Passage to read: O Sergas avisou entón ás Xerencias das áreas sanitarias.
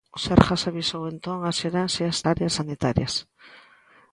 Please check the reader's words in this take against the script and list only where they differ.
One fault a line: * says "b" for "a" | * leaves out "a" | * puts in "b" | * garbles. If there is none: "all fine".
* leaves out "das"